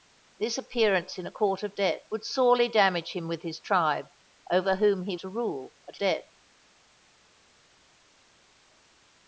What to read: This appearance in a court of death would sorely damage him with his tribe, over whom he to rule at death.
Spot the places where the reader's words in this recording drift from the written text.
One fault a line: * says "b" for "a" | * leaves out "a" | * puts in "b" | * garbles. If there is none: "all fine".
all fine